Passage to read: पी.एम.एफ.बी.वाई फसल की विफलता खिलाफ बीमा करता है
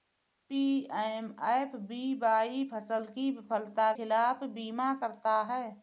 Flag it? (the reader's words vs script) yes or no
no